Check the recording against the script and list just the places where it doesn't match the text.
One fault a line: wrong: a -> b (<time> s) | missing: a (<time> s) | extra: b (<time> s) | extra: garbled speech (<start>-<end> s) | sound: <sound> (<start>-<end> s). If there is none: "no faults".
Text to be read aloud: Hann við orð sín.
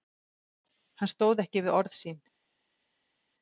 extra: stóð ekki (1.1 s)